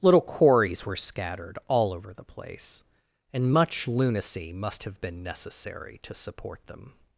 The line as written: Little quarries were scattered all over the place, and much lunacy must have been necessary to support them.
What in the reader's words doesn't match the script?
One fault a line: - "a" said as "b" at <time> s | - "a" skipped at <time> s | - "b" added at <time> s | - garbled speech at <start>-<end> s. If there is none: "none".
none